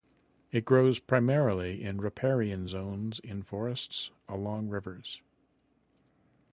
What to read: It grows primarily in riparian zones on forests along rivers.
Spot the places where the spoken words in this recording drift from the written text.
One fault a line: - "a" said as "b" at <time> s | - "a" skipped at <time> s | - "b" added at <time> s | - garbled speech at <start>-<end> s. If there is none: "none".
- "on" said as "in" at 3.2 s